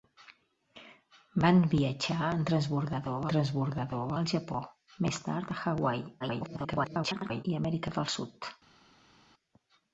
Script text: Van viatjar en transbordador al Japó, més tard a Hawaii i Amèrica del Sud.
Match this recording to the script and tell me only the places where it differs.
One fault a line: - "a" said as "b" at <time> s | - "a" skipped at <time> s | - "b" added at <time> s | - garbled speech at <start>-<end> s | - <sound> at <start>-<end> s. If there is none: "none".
- "transbordador" added at 3.3 s
- garbled speech at 6.2-7.4 s